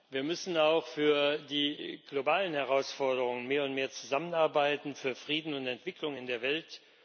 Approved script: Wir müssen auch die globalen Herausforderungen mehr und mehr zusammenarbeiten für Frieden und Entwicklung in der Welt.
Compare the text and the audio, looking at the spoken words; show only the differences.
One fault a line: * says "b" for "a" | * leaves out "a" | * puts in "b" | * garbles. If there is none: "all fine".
* puts in "für"